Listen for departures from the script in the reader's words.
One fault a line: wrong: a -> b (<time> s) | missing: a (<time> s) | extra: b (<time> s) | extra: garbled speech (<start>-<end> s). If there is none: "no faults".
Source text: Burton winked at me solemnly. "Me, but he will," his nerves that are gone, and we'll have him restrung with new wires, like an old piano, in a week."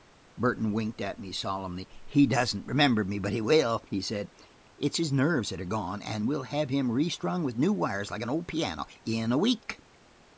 extra: He doesn't remember (2.1 s)
extra: he said It's (3.9 s)